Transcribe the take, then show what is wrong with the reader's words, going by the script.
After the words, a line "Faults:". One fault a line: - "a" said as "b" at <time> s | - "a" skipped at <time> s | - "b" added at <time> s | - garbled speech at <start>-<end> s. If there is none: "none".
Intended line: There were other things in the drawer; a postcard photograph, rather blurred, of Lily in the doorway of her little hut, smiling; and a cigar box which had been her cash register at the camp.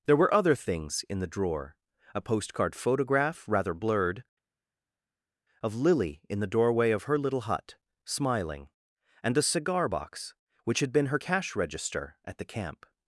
There were other things in the drawer; a postcard photograph, rather blurred, of Lily in the doorway of her little hut, smiling; and a cigar box which had been her cash register at the camp.
Faults:
none